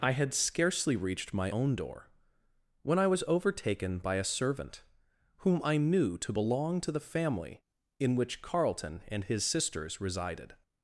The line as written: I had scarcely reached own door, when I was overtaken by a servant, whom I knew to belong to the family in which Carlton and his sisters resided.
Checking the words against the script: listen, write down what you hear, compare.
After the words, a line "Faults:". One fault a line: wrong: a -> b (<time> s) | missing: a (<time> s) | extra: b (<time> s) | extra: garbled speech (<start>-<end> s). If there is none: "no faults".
I had scarcely reached my own door, when I was overtaken by a servant, whom I knew to belong to the family in which Carlton and his sisters resided.
Faults:
extra: my (1.3 s)